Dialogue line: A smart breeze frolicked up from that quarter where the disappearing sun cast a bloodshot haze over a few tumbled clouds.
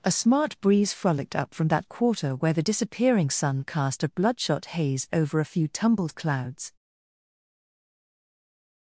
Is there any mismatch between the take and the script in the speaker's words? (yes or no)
no